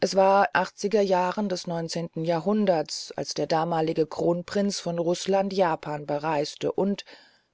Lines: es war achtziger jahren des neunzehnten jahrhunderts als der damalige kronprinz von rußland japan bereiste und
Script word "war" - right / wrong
right